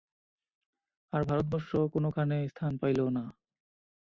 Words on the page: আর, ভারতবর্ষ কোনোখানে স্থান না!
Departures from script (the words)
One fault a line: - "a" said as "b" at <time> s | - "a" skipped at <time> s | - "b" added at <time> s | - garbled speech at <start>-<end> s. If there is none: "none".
- "পাইল" added at 2.8 s